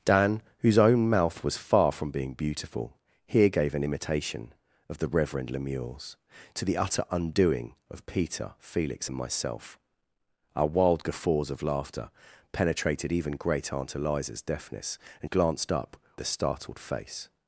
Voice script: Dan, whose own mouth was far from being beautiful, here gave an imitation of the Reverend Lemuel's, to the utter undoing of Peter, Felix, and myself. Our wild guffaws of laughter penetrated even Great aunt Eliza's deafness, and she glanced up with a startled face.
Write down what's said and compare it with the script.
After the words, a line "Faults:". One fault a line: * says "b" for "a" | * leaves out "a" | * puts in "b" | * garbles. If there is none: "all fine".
Dan, whose own mouth was far from being beautiful, here gave an imitation of the Reverend Lemuel's, to the utter undoing of Peter, Felix, and myself. Our wild guffaws of laughter penetrated even Great aunt Eliza's deafness, and glanced up a startled face.
Faults:
* leaves out "she"
* leaves out "with"